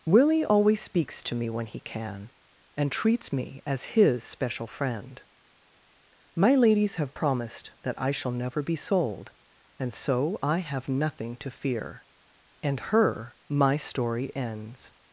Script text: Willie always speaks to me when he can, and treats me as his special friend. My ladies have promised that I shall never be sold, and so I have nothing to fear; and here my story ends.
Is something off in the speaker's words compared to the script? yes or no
yes